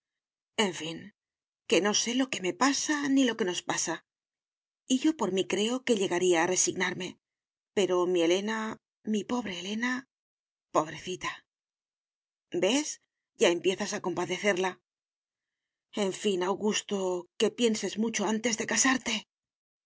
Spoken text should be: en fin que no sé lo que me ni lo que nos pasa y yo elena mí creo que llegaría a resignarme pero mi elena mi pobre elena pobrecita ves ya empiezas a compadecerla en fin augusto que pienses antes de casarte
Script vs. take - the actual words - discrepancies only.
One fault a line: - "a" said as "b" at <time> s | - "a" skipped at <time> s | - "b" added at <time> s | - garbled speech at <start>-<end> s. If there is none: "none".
- "pasa" added at 2.6 s
- "elena" said as "por" at 5.2 s
- "mucho" added at 18.0 s